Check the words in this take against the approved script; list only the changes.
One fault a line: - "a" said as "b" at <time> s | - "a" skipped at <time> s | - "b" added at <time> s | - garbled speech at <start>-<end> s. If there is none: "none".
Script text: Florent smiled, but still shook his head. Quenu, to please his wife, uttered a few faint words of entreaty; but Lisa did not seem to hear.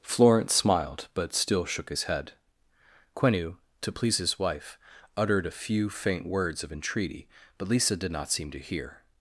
none